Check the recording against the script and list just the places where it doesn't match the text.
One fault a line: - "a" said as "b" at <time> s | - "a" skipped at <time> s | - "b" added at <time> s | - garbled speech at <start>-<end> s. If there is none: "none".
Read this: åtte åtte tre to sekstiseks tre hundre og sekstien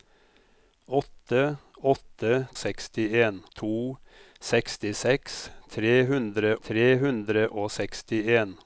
- "tre" said as "sekstien" at 2.6 s
- "tre hundre" added at 6.7 s